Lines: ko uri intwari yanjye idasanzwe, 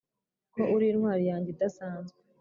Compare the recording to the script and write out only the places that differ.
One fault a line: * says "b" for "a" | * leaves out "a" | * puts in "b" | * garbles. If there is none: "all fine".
all fine